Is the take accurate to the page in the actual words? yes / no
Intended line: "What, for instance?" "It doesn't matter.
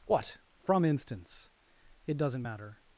no